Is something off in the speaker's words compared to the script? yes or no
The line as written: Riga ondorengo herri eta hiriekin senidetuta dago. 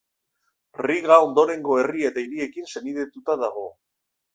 no